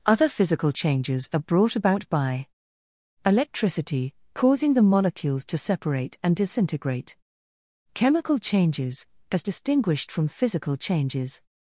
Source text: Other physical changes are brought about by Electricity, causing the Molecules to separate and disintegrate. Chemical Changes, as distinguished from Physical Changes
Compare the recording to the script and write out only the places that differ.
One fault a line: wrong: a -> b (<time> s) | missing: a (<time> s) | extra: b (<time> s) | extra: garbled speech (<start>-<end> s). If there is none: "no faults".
no faults